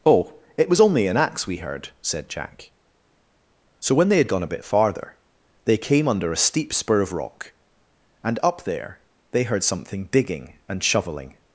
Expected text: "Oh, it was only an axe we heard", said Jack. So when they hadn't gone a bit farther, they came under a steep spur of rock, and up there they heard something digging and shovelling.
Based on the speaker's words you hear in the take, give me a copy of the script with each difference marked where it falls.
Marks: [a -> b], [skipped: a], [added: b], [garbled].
"Oh, it was only an axe we heard", said Jack. So when they [hadn't -> had] gone a bit farther, they came under a steep spur of rock, and up there they heard something digging and shovelling.